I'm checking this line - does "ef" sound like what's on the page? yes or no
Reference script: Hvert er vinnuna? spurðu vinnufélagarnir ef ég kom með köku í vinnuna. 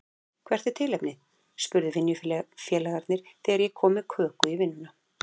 no